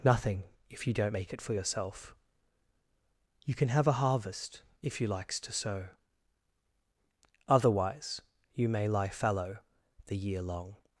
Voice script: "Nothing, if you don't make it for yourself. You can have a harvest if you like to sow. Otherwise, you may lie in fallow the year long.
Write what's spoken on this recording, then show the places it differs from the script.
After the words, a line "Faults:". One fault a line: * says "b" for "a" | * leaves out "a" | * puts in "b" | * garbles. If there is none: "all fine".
"Nothing, if you don't make it for yourself. You can have a harvest if you likes to sow. Otherwise, you may lie fallow the year long.
Faults:
* says "likes" for "like"
* leaves out "in"